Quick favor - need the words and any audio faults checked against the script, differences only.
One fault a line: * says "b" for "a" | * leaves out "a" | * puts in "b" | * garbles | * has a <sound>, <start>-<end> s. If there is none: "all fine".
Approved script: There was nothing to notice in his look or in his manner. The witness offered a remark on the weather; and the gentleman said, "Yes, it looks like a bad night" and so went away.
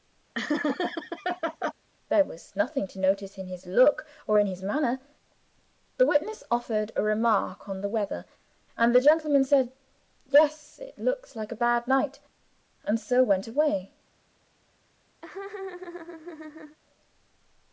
* has a laugh, 0.3-1.7 s
* has a laugh, 15.2-16.8 s